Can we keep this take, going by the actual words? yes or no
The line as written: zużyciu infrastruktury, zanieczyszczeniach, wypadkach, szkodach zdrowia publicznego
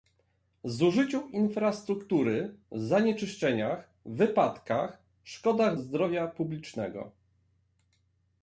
yes